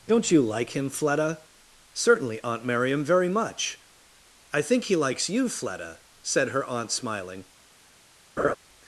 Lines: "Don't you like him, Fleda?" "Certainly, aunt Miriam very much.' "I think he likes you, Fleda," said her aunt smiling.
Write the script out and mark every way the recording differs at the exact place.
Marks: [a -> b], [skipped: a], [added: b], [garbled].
"Don't you like him, Fleda?" "Certainly, aunt Miriam very much.' "I think he likes you, Fleda," said her aunt smiling.